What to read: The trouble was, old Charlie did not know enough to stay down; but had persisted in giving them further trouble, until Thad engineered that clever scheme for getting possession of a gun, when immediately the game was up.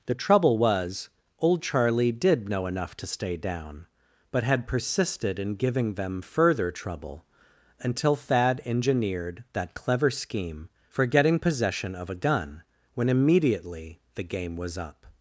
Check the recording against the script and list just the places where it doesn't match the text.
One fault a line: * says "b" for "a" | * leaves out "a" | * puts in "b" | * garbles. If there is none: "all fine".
* leaves out "not"